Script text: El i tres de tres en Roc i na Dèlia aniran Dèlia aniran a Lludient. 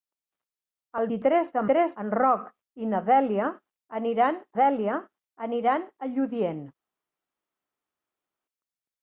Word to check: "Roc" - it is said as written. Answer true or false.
true